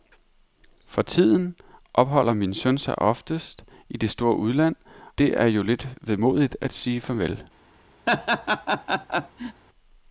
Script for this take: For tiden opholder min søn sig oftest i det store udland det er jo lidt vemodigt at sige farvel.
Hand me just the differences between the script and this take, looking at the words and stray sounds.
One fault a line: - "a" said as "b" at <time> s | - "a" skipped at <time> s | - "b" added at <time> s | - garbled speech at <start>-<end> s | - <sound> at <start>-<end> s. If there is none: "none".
- laugh at 8.1-9.6 s